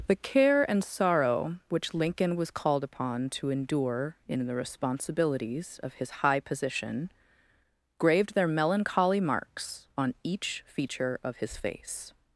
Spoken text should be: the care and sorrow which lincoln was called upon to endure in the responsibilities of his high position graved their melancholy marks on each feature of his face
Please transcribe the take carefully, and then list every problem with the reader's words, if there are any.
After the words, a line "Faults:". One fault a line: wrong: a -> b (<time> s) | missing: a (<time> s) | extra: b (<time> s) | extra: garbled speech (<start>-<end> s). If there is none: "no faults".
the care and sorrow which lincoln was called upon to endure in the responsibilities of his high position graved their melancholy marks on each feature of his face
Faults:
no faults